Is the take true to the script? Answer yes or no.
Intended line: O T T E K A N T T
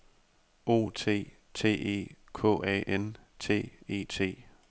no